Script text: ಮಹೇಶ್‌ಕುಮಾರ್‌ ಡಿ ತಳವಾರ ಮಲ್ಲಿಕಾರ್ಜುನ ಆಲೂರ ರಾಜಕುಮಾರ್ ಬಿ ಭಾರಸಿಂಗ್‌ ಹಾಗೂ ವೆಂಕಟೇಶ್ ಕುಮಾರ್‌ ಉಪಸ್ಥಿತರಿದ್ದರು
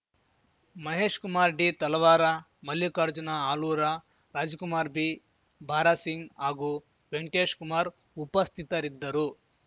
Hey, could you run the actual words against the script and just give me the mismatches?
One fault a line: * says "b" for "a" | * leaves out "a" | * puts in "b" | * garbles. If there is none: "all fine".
all fine